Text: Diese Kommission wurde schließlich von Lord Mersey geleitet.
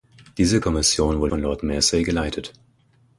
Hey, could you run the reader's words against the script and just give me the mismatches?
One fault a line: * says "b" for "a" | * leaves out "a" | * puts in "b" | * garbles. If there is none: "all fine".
* leaves out "schließlich"